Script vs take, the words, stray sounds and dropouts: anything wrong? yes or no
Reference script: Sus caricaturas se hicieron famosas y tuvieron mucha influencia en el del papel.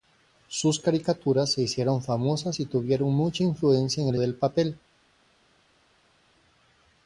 no